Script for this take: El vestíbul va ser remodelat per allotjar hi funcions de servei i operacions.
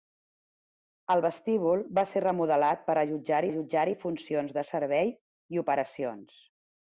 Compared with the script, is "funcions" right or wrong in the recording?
right